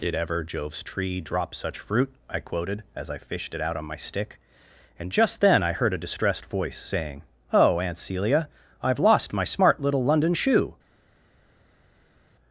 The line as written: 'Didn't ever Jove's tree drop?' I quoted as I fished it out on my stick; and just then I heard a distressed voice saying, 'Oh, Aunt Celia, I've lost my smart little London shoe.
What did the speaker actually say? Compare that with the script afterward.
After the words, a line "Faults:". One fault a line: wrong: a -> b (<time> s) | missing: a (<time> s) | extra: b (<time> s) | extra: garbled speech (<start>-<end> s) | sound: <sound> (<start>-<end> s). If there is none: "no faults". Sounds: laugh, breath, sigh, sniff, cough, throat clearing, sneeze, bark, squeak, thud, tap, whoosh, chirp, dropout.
'Did ever Jove's tree drop such fruit?' I quoted as I fished it out on my stick; and just then I heard a distressed voice saying, 'Oh, Aunt Celia, I've lost my smart little London shoe.
Faults:
wrong: Didn't -> Did (0.0 s)
extra: such fruit (1.5 s)